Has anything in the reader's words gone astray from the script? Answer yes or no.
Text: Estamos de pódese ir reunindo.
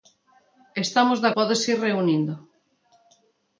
no